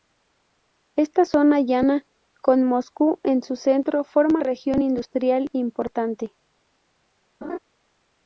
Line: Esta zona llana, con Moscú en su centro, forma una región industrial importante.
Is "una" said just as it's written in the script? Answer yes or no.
no